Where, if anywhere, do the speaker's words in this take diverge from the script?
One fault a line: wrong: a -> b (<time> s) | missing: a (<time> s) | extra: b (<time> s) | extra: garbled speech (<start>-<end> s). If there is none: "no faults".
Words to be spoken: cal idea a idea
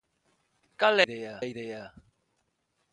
no faults